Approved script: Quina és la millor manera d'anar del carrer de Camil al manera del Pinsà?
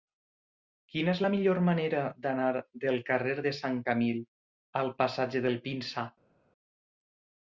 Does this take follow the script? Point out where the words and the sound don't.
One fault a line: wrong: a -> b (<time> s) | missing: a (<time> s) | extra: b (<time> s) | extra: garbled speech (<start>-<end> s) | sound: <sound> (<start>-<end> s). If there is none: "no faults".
extra: Sant (3.6 s)
wrong: manera -> passatge (5.0 s)